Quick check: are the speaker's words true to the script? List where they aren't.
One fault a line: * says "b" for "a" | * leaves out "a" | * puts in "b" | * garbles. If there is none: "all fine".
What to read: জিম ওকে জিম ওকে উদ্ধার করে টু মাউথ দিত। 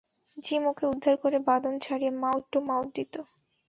* says "উদ্ধার করে বাঁধন ছাড়িয়ে মাউথ" for "জিম ওকে উদ্ধার করে"